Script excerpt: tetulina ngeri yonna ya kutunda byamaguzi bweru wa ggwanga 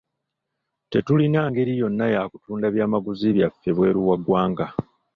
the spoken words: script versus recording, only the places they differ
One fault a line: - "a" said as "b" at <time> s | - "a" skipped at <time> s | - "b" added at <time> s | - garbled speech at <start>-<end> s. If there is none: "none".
- "byaffe" added at 3.3 s